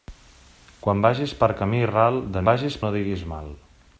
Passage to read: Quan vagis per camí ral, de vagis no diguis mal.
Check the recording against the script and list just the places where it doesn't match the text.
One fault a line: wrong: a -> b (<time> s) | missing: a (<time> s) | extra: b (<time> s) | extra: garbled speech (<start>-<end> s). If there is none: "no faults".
no faults